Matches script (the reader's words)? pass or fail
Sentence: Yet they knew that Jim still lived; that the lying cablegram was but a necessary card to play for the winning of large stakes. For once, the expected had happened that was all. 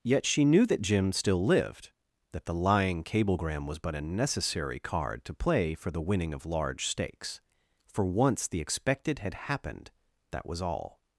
fail